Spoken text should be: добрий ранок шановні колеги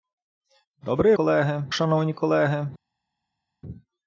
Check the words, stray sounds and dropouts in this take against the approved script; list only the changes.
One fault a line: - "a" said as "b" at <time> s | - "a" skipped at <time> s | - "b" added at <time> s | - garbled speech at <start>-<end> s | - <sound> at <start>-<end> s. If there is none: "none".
- "ранок" said as "колеги" at 1.1 s